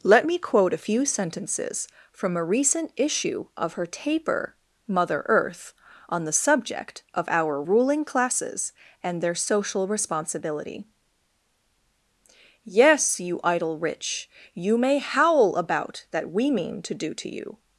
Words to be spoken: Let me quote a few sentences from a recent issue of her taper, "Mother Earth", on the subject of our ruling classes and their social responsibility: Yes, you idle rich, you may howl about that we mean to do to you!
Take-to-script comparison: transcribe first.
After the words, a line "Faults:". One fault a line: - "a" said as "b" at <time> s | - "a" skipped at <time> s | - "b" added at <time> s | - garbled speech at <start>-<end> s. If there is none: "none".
Let me quote a few sentences from a recent issue of her taper, "Mother Earth", on the subject of our ruling classes and their social responsibility: Yes, you idle rich, you may howl about that we mean to do to you!
Faults:
none